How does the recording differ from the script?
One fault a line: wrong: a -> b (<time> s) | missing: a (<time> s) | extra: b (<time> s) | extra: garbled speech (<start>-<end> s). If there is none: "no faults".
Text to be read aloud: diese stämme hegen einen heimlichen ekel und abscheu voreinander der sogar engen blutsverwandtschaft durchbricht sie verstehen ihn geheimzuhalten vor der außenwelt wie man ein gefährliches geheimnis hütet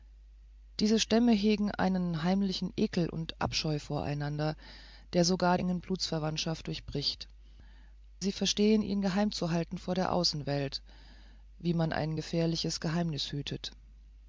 no faults